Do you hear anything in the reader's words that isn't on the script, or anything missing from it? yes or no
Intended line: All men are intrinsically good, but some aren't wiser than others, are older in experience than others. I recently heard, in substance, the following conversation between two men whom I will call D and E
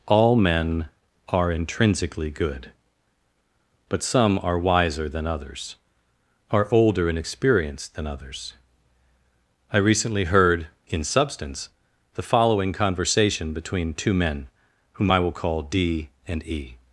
yes